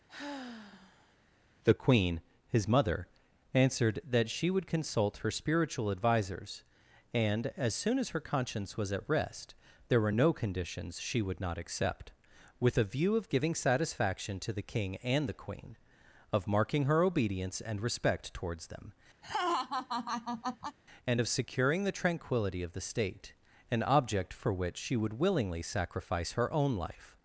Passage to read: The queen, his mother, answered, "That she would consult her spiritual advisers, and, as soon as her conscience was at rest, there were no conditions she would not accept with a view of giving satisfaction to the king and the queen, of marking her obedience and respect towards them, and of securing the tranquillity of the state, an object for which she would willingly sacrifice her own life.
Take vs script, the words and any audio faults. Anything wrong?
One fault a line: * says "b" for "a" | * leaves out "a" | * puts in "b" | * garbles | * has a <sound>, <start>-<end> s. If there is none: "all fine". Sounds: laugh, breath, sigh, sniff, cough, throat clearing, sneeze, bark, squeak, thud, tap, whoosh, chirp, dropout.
* has a sigh, 0.1-1.2 s
* has a laugh, 19.2-20.8 s